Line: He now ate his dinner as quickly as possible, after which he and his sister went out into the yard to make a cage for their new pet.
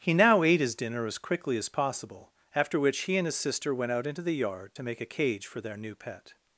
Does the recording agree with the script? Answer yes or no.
yes